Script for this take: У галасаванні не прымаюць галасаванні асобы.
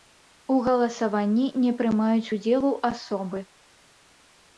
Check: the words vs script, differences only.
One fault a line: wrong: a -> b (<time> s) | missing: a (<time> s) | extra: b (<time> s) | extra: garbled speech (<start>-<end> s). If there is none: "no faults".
wrong: галасаванні -> удзелу (2.3 s)